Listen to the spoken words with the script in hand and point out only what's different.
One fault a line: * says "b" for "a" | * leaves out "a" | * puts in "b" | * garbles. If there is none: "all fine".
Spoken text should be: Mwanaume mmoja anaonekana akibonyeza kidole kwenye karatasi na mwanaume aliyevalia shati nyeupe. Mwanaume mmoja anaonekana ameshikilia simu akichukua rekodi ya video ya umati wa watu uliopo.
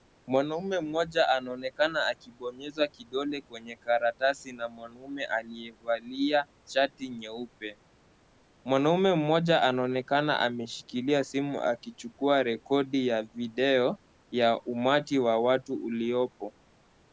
all fine